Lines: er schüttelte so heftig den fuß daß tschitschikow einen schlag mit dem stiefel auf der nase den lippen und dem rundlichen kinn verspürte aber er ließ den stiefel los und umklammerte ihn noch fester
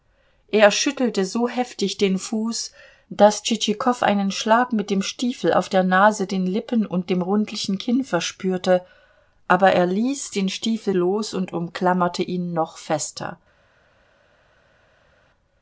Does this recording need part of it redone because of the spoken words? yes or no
no